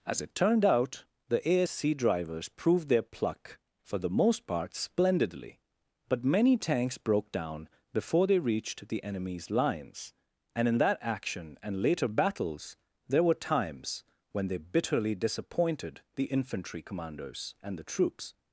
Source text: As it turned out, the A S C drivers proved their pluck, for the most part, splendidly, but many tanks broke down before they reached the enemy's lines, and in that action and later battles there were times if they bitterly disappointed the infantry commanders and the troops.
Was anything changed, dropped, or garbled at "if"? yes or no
yes